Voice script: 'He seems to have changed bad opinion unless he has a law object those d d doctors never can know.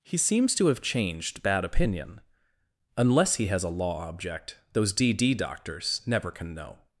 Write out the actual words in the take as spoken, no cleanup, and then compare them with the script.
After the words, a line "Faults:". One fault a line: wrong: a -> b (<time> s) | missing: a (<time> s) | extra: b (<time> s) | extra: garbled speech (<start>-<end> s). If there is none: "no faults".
'He seems to have changed bad opinion unless he has a law object those d d doctors never can know.
Faults:
no faults